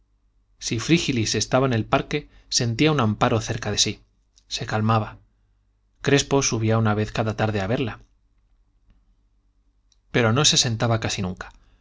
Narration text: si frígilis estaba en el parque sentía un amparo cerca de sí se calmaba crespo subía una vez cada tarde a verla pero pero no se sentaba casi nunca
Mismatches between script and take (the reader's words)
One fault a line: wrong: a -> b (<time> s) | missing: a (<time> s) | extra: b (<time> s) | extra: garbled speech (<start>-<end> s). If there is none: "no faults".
missing: pero (10.3 s)